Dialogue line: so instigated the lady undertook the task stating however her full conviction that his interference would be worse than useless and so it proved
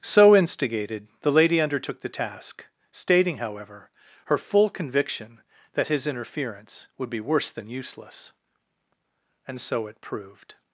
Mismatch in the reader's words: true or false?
false